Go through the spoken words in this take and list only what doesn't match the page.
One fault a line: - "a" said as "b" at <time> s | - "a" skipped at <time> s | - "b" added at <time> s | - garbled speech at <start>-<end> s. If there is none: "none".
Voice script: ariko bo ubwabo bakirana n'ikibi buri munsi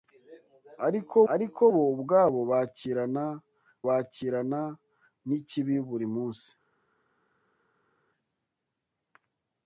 - "ariko" added at 1.3 s
- "bakirana" added at 3.9 s